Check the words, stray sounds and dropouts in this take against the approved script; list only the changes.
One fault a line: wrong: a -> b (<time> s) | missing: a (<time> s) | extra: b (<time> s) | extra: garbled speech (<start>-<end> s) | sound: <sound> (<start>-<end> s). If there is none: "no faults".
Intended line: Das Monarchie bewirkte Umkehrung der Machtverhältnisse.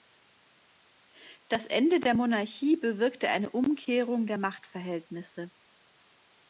extra: Ende der (1.7 s)
extra: eine (3.3 s)